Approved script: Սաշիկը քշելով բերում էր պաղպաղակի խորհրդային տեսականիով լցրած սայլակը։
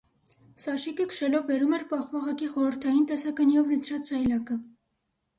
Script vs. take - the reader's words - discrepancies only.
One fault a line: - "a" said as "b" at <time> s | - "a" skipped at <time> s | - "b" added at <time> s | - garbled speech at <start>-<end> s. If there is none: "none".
none